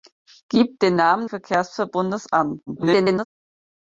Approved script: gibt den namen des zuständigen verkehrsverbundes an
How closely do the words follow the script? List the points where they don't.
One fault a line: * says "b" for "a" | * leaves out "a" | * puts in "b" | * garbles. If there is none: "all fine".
* leaves out "des zuständigen"
* garbles